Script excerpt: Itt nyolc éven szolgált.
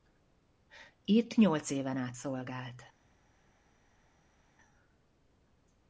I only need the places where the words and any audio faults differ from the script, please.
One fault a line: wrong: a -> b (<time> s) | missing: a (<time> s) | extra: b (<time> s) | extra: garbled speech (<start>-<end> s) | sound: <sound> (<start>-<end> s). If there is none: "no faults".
extra: át (2.0 s)